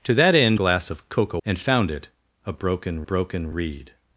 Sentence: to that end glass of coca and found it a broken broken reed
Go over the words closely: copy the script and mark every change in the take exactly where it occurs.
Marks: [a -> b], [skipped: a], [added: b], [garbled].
to that end glass of coca and found it a broken broken reed